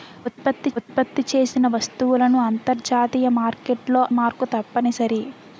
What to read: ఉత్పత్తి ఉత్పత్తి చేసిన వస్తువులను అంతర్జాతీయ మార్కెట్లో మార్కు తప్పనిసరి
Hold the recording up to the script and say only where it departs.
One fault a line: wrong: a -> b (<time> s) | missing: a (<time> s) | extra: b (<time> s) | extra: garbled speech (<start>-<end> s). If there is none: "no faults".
no faults